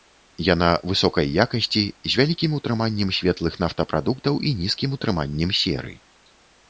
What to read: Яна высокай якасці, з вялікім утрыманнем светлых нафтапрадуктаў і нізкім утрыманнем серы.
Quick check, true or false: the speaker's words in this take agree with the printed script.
true